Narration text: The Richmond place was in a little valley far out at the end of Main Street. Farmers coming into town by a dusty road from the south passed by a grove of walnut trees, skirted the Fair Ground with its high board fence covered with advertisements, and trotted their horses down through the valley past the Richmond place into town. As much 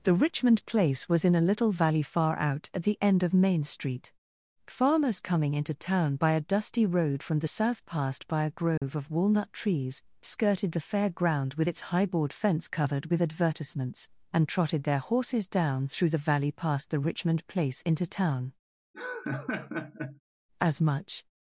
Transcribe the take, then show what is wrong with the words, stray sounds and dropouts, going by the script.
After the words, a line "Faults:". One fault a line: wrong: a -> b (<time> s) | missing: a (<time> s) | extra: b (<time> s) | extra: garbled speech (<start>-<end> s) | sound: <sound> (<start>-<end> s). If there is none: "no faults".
The Richmond place was in a little valley far out at the end of Main Street. Farmers coming into town by a dusty road from the south passed by a grove of walnut trees, skirted the Fair Ground with its high board fence covered with advertisements, and trotted their horses down through the valley past the Richmond place into town. As much
Faults:
sound: dropout (8.8-8.8 s)
sound: laugh (18.9-20.2 s)